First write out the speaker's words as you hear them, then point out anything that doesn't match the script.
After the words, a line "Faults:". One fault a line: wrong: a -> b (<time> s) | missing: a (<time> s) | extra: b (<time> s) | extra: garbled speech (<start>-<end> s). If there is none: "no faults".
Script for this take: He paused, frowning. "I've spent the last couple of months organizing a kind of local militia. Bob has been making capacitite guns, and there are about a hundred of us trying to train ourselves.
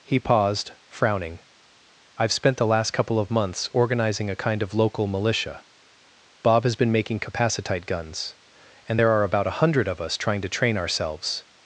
He paused, frowning. "I've spent the last couple of months organizing a kind of local militia. Bob has been making capacitite guns, and there are about a hundred of us trying to train ourselves.
Faults:
no faults